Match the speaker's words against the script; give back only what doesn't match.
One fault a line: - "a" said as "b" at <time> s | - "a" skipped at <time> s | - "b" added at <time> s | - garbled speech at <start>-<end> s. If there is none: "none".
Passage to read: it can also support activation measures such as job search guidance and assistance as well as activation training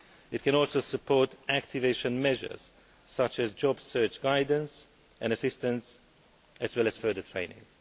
- "activation" said as "further" at 7.0 s